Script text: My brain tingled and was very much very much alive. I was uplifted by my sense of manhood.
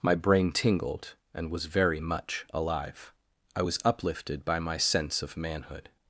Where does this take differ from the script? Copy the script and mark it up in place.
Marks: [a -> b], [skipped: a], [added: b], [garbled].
My brain tingled and was very much [skipped: very much] alive. I was uplifted by my sense of manhood.